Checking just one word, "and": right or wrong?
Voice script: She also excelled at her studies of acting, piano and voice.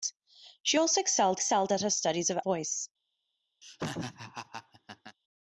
wrong